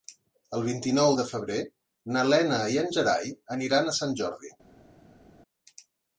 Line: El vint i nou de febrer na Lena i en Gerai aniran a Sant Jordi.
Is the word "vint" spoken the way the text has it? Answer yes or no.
yes